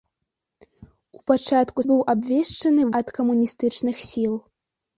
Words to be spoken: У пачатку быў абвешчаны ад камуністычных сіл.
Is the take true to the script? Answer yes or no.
yes